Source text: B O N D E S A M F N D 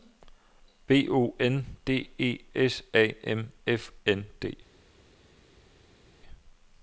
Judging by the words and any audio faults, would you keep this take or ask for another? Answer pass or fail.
pass